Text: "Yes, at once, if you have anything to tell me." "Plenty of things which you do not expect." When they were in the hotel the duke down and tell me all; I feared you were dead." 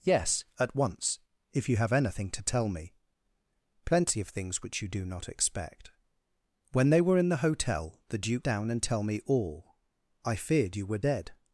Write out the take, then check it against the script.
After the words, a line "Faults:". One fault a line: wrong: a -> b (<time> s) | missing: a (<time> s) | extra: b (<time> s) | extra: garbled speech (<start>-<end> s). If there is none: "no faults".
"Yes, at once, if you have anything to tell me." "Plenty of things which you do not expect." When they were in the hotel the duke down and tell me all; I feared you were dead."
Faults:
no faults